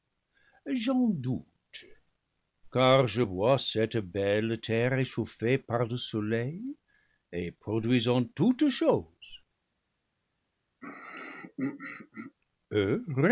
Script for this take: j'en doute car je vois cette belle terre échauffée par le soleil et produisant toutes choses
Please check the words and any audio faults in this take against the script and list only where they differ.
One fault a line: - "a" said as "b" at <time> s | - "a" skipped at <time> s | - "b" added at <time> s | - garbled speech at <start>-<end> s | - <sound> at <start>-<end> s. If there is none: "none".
- throat clearing at 10.8-12.4 s